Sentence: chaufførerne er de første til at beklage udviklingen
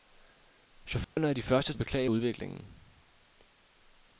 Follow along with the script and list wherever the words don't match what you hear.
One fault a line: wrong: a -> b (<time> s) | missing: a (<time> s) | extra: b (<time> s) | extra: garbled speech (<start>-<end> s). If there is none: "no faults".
missing: til (1.7 s)